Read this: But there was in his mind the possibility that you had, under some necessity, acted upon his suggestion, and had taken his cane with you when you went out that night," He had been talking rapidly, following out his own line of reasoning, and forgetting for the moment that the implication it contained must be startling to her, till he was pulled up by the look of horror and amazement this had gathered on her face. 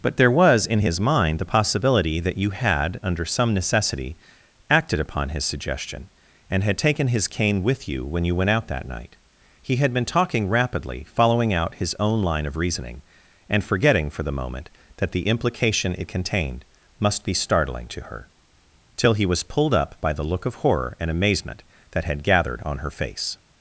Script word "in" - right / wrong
right